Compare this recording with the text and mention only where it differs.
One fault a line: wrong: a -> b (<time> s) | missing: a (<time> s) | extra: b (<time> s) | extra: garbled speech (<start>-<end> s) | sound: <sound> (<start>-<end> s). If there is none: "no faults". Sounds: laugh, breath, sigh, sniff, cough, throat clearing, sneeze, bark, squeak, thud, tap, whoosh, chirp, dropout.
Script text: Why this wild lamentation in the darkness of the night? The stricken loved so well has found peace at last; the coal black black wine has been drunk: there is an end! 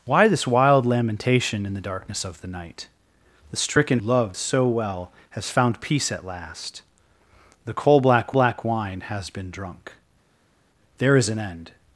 no faults